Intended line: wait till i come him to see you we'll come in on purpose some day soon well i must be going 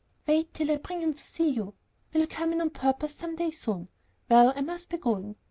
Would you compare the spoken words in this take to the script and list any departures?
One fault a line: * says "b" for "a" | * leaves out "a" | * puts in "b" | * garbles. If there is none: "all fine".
* says "bring" for "come"